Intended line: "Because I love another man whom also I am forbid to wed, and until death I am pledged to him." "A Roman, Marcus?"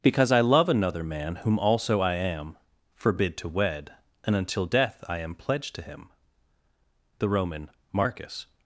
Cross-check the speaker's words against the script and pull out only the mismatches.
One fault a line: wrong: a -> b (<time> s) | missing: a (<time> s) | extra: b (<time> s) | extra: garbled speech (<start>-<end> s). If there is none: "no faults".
wrong: A -> The (7.2 s)